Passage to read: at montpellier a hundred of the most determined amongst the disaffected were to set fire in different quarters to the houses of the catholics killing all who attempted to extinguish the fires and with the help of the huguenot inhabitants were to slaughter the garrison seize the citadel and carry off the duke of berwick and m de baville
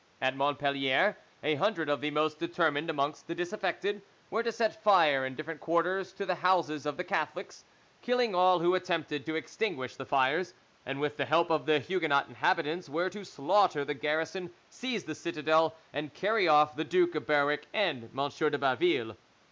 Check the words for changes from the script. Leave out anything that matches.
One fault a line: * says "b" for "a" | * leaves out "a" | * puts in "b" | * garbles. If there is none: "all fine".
all fine